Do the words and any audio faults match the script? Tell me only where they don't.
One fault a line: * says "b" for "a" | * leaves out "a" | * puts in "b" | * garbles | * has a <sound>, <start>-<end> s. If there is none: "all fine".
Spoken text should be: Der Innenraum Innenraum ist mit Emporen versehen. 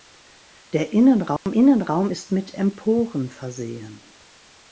* has a dropout, 1.4-1.5 s